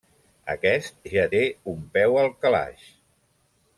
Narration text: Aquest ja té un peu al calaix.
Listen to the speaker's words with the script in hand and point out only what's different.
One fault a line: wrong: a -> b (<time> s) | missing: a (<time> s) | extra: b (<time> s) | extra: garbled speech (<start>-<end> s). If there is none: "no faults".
no faults